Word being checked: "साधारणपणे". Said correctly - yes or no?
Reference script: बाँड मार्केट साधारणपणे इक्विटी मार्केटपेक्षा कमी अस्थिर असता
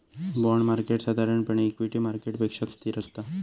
yes